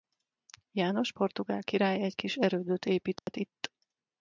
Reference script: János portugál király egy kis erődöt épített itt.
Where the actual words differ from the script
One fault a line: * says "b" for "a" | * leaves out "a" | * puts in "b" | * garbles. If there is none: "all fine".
all fine